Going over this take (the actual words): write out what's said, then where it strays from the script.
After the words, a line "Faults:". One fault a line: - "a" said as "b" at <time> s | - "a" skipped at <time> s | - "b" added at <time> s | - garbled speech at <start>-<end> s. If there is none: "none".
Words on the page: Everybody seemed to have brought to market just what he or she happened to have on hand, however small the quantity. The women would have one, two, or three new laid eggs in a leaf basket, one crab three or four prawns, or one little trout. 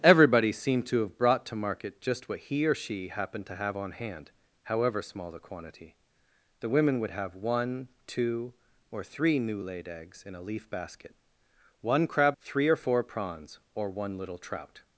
Everybody seemed to have brought to market just what he or she happened to have on hand, however small the quantity. The women would have one, two, or three new laid eggs in a leaf basket, one crab three or four prawns, or one little trout.
Faults:
none